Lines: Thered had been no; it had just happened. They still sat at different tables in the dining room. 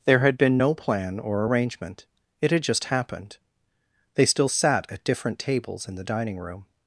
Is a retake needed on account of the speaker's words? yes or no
yes